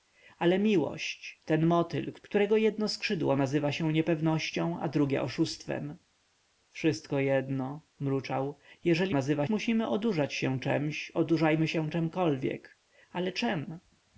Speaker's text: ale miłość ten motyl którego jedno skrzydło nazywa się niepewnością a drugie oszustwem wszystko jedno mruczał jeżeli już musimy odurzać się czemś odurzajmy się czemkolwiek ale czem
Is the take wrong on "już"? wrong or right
wrong